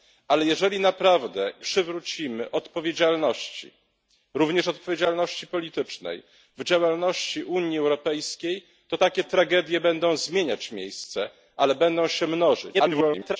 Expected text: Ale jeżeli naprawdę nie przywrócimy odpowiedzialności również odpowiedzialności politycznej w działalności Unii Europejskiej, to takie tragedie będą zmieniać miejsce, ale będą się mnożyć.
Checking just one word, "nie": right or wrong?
wrong